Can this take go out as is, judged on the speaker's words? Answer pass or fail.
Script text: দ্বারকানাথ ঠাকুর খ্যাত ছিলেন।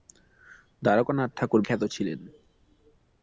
pass